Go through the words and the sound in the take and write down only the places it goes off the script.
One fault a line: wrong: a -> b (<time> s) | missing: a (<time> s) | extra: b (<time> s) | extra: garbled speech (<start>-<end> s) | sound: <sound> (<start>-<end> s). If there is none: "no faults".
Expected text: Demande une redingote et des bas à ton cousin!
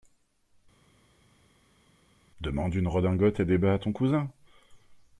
no faults